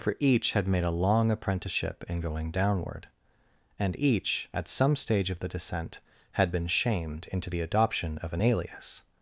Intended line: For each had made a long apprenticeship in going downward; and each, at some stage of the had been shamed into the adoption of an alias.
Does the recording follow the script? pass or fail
fail